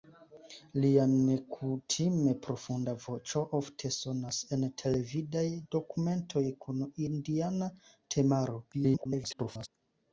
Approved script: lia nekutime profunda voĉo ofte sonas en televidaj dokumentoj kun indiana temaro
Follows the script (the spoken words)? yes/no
no